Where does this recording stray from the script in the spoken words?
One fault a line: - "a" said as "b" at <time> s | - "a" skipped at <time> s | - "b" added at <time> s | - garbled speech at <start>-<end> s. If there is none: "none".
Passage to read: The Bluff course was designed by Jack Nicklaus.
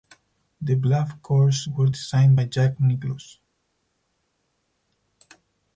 none